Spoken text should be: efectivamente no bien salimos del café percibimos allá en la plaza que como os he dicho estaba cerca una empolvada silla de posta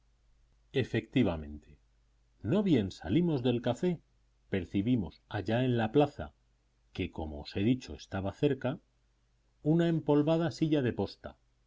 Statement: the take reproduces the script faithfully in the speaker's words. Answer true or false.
true